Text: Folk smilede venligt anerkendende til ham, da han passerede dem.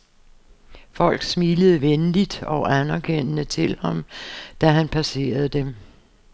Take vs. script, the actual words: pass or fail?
fail